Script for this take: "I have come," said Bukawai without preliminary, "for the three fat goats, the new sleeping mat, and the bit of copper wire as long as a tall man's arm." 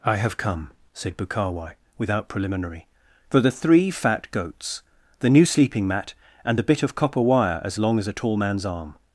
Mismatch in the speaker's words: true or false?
false